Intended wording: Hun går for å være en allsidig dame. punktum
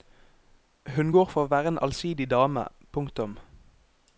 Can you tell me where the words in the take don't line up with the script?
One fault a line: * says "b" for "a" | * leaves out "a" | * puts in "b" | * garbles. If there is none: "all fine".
all fine